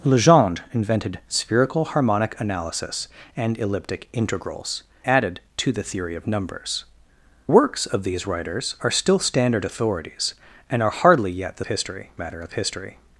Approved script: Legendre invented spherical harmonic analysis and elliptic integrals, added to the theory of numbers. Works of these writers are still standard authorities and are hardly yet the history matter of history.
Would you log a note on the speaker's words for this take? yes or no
no